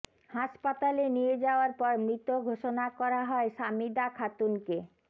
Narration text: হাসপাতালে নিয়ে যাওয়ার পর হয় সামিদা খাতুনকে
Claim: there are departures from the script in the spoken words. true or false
true